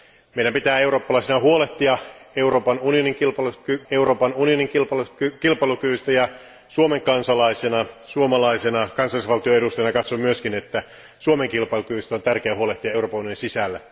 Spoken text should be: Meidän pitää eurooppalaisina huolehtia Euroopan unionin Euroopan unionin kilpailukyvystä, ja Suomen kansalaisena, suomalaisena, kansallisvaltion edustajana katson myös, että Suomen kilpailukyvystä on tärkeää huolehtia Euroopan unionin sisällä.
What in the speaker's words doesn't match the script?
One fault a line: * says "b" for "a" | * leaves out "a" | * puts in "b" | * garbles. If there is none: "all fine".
all fine